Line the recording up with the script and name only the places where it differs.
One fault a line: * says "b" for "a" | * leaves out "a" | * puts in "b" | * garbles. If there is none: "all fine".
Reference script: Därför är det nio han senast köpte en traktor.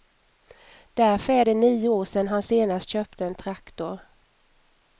* puts in "år sedan"